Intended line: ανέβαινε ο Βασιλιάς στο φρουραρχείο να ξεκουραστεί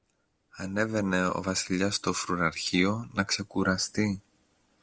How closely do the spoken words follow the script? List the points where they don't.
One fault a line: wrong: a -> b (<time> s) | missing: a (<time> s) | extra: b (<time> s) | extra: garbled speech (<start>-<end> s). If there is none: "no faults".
no faults